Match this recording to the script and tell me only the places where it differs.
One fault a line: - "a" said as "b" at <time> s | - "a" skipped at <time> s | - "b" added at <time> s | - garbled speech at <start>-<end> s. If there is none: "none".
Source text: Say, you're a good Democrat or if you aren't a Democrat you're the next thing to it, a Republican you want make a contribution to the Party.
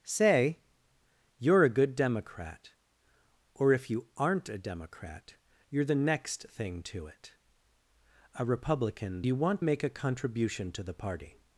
none